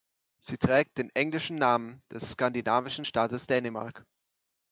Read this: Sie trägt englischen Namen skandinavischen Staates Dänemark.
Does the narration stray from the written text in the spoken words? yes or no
yes